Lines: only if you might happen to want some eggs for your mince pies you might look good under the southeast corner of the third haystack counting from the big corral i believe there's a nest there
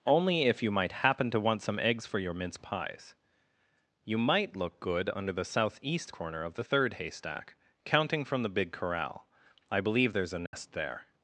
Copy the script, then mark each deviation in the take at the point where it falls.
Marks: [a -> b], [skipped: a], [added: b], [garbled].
only if you might happen to want some eggs for your mince pies you might look good under the southeast corner of the third haystack counting from the big corral i believe there's a nest there